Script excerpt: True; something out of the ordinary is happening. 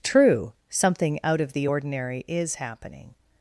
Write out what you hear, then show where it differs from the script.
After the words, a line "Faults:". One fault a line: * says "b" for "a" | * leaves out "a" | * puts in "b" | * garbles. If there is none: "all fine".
True; something out of the ordinary is happening.
Faults:
all fine